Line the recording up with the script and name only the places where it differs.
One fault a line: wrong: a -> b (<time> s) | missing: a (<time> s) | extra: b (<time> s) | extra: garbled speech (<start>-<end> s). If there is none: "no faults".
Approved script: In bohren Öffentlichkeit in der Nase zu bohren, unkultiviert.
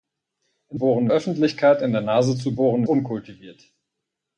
no faults